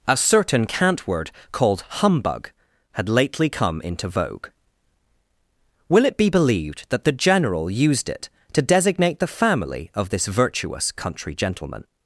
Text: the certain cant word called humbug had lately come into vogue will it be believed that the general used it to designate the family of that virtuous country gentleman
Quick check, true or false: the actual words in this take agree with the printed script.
false